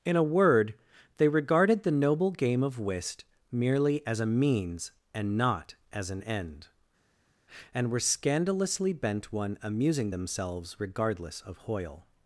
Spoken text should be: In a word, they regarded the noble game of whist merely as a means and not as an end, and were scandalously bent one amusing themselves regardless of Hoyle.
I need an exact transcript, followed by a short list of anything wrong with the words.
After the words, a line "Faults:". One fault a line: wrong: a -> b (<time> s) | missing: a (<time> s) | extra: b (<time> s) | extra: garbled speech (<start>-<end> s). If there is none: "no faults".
In a word, they regarded the noble game of whist merely as a means and not as an end, and were scandalously bent one amusing themselves regardless of Hoyle.
Faults:
no faults